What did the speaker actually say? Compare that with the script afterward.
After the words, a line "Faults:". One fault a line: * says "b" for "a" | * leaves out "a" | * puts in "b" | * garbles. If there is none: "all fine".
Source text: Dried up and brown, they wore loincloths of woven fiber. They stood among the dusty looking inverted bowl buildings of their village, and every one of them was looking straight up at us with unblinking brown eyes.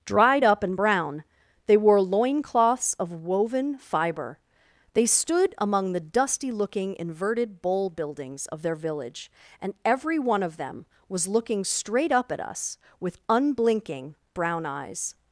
Dried up and brown, they wore loincloths of woven fiber. They stood among the dusty looking inverted bowl buildings of their village, and every one of them was looking straight up at us with unblinking brown eyes.
Faults:
all fine